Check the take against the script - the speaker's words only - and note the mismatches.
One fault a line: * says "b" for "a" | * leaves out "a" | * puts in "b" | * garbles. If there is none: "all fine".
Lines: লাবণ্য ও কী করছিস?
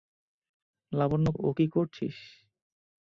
all fine